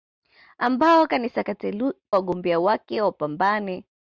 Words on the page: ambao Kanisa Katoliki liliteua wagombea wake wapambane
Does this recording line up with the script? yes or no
no